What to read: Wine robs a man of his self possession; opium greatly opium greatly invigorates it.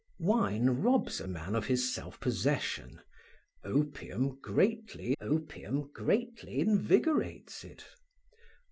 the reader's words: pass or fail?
pass